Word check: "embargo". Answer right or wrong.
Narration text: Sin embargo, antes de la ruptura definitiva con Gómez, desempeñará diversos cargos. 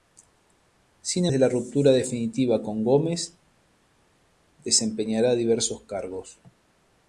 wrong